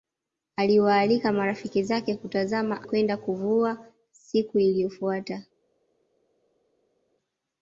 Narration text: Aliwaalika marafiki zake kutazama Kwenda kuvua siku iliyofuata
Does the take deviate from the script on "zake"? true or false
false